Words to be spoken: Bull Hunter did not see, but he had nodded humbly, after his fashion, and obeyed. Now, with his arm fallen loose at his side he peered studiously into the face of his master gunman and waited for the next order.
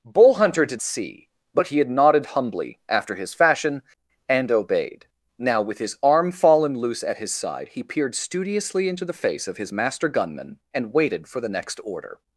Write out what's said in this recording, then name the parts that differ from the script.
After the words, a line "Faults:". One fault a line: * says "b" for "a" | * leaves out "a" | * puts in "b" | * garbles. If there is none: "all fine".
Bull Hunter did see, but he had nodded humbly, after his fashion, and obeyed. Now, with his arm fallen loose at his side he peered studiously into the face of his master gunman and waited for the next order.
Faults:
* leaves out "not"